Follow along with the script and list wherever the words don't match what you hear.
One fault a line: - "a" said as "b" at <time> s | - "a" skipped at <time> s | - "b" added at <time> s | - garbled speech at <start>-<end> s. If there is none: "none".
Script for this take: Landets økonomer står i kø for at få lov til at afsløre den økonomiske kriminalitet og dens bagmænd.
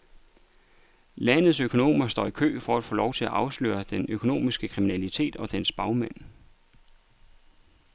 none